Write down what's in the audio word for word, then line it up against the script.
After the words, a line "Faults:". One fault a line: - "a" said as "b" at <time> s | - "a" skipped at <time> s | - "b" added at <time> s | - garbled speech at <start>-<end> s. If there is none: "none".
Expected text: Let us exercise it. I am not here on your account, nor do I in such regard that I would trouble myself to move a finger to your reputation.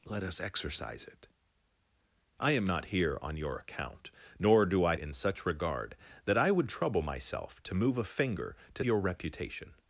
Let us exercise it. I am not here on your account, nor do I in such regard that I would trouble myself to move a finger to your reputation.
Faults:
none